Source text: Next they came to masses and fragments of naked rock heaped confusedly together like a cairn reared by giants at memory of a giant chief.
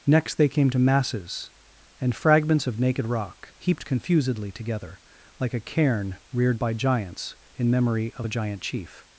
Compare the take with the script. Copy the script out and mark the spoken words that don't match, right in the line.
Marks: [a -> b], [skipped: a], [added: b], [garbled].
Next they came to masses and fragments of naked rock heaped confusedly together like a cairn reared by giants [at -> in] memory of a giant chief.